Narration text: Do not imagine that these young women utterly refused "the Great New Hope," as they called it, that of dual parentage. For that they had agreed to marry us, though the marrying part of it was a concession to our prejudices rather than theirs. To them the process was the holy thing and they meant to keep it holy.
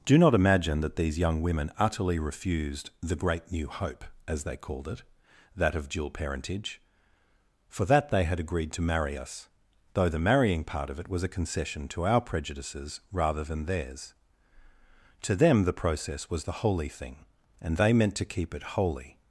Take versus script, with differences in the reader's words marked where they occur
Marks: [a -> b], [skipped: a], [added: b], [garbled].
Do not imagine that these young women utterly refused "the Great New Hope," as they called it, that of dual parentage. For that they had agreed to marry us, though the marrying part of it was a concession to our prejudices rather than theirs. To them the process was the holy thing and they meant to keep it holy.